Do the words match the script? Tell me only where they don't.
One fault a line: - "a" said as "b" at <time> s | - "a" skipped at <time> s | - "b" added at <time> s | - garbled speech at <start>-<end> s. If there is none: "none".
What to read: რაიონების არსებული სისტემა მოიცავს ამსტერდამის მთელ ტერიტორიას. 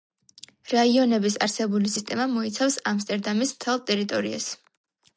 none